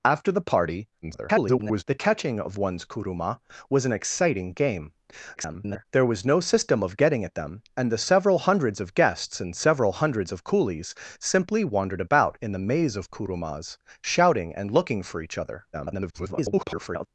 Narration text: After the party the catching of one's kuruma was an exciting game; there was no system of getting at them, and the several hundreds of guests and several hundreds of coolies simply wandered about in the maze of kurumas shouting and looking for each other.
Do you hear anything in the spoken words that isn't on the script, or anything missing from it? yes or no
yes